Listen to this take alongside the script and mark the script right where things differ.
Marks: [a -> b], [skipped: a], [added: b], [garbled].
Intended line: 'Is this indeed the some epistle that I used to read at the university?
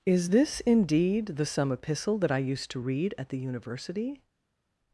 'Is this indeed the some epistle that I used to read at the university?